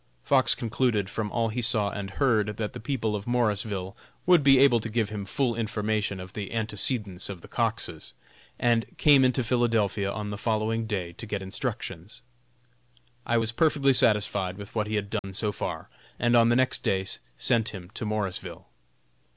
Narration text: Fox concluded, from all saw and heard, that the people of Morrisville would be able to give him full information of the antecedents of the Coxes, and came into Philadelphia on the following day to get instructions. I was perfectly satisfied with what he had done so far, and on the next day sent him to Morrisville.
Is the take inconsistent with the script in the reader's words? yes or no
yes